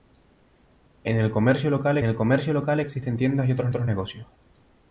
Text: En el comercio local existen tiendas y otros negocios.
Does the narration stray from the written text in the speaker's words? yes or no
yes